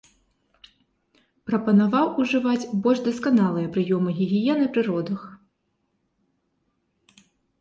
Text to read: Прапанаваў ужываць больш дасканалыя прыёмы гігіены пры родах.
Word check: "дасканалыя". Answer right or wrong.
right